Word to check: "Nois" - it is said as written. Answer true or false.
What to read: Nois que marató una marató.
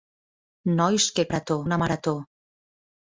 true